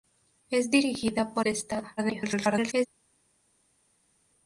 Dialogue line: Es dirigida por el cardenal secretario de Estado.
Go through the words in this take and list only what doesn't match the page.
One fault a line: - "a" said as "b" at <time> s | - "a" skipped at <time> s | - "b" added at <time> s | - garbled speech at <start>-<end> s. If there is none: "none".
- "el cardenal secretario" skipped at 1.4 s
- garbled speech at 2.0-2.9 s